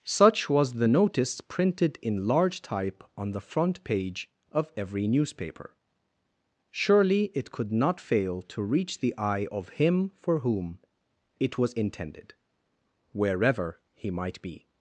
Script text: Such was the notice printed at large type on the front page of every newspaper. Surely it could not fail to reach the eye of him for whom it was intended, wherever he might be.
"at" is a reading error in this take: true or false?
true